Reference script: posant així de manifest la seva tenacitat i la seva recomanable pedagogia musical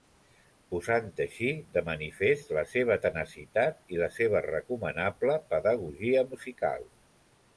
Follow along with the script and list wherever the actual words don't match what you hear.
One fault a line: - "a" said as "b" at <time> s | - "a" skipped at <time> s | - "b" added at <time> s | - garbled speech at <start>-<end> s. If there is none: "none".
none